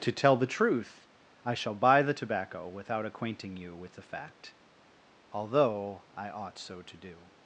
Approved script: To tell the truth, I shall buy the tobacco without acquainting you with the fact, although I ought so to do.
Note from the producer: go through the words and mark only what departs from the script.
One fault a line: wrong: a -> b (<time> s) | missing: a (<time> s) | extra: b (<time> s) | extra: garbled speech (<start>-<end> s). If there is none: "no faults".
no faults